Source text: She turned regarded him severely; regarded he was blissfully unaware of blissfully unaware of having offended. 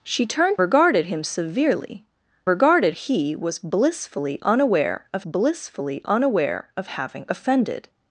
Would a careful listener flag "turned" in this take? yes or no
no